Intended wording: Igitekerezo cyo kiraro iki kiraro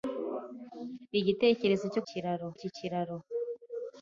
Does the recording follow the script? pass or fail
pass